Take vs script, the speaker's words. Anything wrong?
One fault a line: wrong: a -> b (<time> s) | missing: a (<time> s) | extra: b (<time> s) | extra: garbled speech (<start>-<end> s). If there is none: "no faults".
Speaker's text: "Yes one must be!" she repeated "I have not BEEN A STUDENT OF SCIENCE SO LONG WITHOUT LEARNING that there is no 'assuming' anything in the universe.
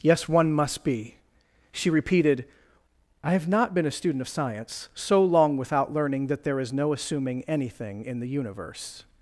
no faults